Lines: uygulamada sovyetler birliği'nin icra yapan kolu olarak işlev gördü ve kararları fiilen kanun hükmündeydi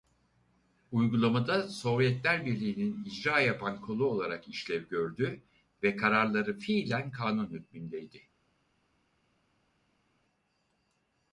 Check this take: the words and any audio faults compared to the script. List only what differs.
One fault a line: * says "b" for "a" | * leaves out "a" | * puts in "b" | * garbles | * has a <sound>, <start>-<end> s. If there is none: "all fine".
all fine